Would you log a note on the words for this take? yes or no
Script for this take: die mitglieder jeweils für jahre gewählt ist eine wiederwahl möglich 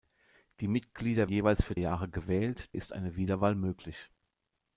no